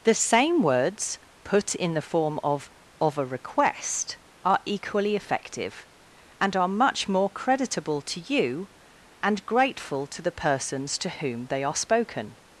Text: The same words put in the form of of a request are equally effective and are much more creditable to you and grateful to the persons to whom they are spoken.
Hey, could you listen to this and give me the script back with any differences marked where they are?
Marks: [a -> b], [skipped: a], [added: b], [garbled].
The same words put in the form of of a request are equally effective and are much more creditable to you and grateful to the persons to whom they are spoken.